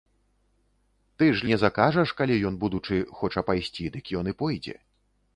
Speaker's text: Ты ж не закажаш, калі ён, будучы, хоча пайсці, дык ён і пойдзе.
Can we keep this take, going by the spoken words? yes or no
yes